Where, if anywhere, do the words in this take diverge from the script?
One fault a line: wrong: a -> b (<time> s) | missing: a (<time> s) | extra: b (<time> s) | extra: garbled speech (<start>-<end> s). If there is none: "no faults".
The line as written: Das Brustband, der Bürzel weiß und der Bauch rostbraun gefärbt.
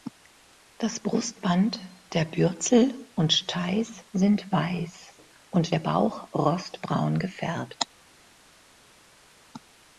extra: und Steiß sind (3.1 s)